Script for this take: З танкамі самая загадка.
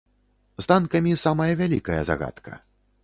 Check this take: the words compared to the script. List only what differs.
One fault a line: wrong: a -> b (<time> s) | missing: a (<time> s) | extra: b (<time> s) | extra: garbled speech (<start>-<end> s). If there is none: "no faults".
extra: вялікая (1.6 s)